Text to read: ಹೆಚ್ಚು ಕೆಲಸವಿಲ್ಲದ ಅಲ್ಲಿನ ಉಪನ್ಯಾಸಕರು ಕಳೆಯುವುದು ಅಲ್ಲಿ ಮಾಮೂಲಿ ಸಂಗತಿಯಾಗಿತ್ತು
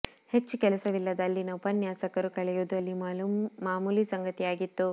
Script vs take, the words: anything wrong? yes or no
no